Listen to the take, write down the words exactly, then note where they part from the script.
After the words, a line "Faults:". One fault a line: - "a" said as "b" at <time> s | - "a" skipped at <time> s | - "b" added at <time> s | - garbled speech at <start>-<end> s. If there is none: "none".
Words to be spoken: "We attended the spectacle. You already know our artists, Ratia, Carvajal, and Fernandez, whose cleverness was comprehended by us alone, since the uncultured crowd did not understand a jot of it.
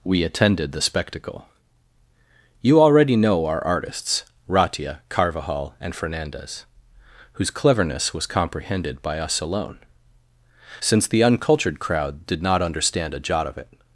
"We attended the spectacle. You already know our artists, Ratia, Carvajal, and Fernandez, whose cleverness was comprehended by us alone, since the uncultured crowd did not understand a jot of it.
Faults:
none